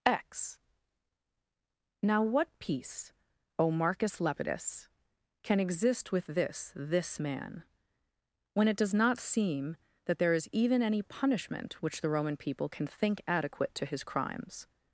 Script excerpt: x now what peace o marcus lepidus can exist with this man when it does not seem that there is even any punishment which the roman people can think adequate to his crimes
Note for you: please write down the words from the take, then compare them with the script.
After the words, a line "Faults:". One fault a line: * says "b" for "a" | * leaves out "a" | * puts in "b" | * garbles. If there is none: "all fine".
x now what peace o marcus lepidus can exist with this this man when it does not seem that there is even any punishment which the roman people can think adequate to his crimes
Faults:
* puts in "this"